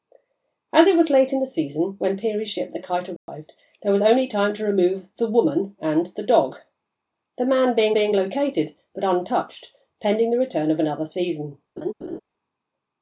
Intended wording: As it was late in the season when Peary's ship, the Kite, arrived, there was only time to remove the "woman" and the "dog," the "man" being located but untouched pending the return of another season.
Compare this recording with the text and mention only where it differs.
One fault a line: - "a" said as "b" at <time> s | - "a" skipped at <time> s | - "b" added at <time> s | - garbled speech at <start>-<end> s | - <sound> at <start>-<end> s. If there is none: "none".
- dropout at 3.2-3.3 s
- "being" added at 7.9 s
- laugh at 11.8-12.2 s